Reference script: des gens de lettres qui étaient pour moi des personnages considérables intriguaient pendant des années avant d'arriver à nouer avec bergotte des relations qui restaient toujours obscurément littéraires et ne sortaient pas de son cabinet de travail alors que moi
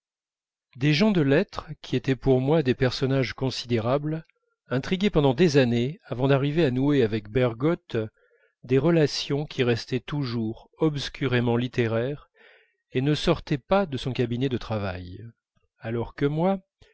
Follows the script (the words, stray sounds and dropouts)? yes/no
yes